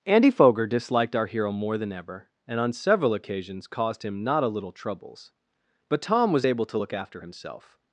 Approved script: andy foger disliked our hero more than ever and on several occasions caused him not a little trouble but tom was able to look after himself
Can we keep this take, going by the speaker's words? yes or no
no